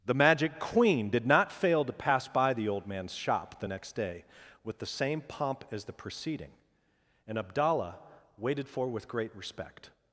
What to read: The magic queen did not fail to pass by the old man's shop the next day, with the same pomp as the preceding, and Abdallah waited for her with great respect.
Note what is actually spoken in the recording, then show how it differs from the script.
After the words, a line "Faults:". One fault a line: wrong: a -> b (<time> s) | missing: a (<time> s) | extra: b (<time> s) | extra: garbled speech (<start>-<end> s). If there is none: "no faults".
The magic queen did not fail to pass by the old man's shop the next day, with the same pomp as the preceding, and Abdallah waited for with great respect.
Faults:
missing: her (8.9 s)